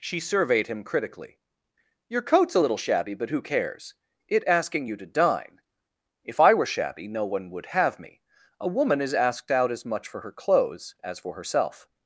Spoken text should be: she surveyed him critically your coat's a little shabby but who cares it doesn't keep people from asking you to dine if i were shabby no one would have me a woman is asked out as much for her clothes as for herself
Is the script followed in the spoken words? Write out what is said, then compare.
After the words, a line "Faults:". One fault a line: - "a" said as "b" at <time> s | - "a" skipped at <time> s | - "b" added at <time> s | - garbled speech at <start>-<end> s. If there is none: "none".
she surveyed him critically your coat's a little shabby but who cares it asking you to dine if i were shabby no one would have me a woman is asked out as much for her clothes as for herself
Faults:
- "doesn't keep people from" skipped at 4.5 s